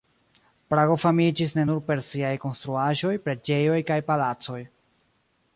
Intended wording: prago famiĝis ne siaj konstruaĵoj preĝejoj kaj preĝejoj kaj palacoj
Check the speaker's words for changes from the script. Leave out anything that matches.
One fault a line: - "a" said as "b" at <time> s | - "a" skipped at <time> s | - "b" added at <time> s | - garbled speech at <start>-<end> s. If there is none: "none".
- "nur per" added at 1.7 s
- "preĝejoj kaj" skipped at 4.0 s